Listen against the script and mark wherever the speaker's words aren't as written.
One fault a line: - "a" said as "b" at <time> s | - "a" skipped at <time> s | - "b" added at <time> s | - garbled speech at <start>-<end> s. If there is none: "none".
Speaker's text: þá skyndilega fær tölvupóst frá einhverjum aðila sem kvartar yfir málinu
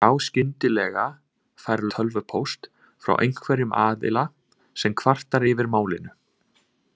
none